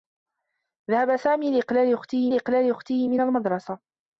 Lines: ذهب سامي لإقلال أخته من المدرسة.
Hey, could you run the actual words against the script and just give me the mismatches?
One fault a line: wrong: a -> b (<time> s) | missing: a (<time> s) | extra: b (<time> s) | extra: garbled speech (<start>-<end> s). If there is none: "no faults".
extra: لإقلال أخته (2.3 s)